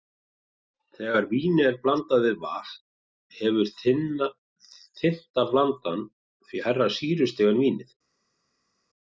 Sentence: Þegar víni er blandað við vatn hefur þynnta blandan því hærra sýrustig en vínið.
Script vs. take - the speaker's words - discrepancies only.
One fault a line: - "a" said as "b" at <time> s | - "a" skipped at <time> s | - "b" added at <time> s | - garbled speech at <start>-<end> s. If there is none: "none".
none